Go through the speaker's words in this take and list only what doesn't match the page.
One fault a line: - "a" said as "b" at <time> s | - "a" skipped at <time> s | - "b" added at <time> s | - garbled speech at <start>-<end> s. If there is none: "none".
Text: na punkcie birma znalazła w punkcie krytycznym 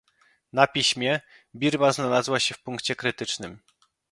- "punkcie" said as "piśmie" at 0.7 s
- "się" added at 2.4 s